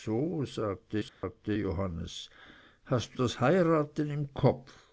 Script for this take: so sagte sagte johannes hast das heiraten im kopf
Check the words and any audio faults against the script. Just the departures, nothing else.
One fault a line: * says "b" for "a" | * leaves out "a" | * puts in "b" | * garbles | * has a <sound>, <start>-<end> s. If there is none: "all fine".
* has a dropout, 1.1-1.2 s